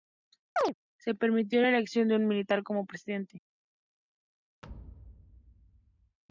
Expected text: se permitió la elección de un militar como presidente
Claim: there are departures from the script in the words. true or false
false